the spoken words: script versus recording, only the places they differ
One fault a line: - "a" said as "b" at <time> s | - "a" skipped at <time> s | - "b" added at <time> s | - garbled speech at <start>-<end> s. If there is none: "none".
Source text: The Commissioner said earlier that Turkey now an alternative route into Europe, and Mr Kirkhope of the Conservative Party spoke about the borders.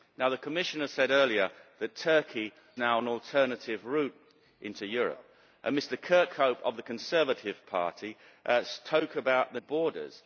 none